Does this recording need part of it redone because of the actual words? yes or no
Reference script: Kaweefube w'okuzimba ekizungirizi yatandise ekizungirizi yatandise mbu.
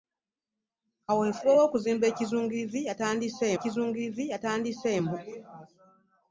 no